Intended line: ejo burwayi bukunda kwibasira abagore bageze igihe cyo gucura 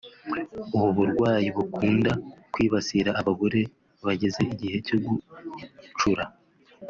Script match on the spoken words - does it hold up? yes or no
no